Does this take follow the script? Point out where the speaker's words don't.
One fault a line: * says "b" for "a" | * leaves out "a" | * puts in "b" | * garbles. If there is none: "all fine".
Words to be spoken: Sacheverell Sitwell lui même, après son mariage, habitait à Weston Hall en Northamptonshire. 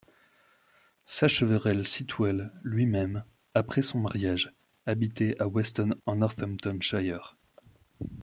* leaves out "Hall"